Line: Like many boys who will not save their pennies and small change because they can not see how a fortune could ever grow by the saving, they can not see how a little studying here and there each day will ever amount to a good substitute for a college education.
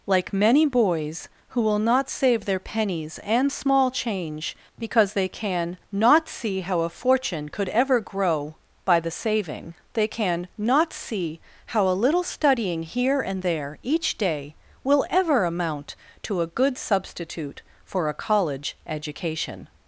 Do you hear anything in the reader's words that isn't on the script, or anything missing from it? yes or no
no